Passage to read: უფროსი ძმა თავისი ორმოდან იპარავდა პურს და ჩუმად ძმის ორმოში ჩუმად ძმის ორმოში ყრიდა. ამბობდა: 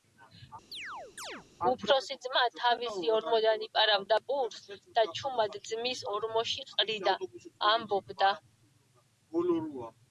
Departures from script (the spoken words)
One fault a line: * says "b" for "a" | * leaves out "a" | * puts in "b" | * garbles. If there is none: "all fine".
* leaves out "ჩუმად ძმის ორმოში"